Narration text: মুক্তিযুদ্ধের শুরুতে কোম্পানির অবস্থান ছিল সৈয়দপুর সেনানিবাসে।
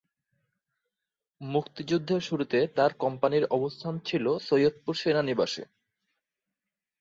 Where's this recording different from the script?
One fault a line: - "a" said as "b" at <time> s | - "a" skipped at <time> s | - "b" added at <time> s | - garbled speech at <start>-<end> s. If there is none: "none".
- "তার" added at 2.8 s